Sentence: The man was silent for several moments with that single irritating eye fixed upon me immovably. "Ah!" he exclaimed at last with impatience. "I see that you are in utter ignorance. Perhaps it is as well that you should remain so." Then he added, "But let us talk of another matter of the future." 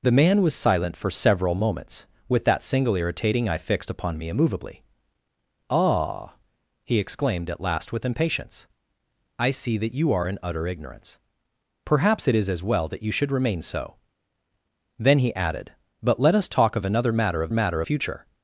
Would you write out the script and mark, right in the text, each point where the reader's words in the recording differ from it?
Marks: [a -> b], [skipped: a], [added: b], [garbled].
The man was silent for several moments with that single irritating eye fixed upon me immovably. "Ah!" he exclaimed at last with impatience. "I see that you are in utter ignorance. Perhaps it is as well that you should remain so." Then he added, "But let us talk of another matter of [the -> matter] future."